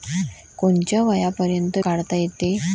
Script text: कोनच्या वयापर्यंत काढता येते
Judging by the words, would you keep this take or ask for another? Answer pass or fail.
pass